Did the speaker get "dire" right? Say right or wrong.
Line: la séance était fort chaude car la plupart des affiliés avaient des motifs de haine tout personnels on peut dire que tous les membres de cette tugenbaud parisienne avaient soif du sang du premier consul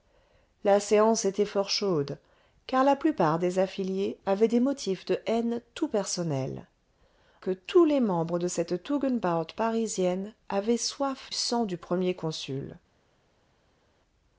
wrong